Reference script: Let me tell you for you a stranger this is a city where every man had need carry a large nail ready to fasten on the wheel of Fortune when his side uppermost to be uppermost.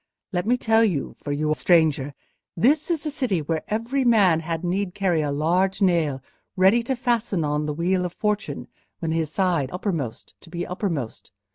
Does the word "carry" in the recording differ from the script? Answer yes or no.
no